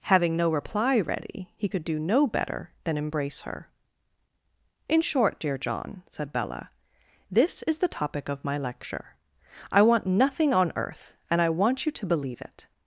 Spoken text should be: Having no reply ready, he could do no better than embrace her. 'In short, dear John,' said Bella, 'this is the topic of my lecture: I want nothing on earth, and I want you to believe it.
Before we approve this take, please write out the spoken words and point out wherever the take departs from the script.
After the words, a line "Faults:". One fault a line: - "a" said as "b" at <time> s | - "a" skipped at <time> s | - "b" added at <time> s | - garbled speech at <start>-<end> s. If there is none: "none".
Having no reply ready, he could do no better than embrace her. 'In short, dear John,' said Bella, 'this is the topic of my lecture: I want nothing on earth, and I want you to believe it.
Faults:
none